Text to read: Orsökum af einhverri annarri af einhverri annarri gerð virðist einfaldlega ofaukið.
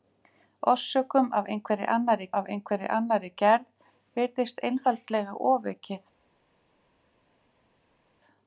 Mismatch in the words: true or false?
false